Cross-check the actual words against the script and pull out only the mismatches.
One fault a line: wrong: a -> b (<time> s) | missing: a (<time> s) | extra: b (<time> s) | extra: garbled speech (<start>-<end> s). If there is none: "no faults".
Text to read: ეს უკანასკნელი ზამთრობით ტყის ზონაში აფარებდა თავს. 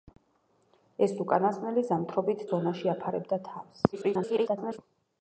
missing: ტყის (2.4 s)
extra: garbled speech (3.9-4.8 s)